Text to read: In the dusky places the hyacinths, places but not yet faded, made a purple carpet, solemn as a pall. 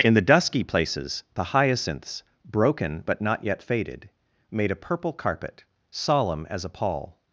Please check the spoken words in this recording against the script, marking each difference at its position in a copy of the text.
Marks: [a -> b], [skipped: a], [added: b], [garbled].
In the dusky places the hyacinths, [places -> broken] but not yet faded, made a purple carpet, solemn as a pall.